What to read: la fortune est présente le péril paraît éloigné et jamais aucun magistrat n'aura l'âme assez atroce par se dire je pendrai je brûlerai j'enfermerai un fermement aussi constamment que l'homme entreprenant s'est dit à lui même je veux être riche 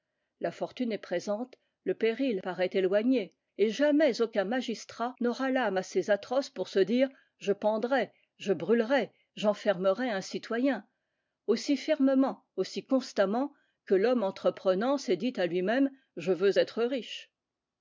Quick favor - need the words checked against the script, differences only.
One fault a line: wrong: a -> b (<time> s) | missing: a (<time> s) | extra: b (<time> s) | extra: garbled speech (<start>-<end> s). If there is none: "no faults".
wrong: par -> pour (6.5 s)
extra: citoyen aussi (10.2 s)